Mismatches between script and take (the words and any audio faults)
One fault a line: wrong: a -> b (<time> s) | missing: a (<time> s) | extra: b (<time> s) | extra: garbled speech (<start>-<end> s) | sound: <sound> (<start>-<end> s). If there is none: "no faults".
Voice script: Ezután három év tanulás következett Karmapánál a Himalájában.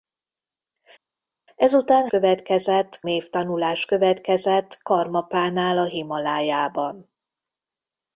wrong: három -> következett (2.1 s)